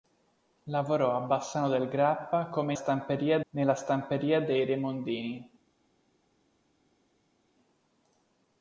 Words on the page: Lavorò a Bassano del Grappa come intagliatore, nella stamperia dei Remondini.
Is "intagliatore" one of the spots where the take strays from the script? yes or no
yes